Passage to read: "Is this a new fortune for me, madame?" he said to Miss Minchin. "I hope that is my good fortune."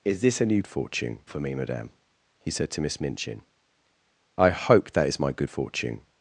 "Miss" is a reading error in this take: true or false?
false